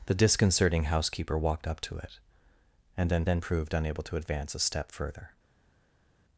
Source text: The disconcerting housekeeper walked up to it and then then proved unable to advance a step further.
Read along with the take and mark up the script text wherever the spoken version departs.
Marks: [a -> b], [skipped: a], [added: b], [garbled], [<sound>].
The disconcerting housekeeper walked up to it and then then proved unable to advance a step further.